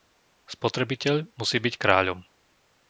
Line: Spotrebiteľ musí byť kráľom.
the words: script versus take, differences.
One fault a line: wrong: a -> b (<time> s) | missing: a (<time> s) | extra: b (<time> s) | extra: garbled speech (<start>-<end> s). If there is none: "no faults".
no faults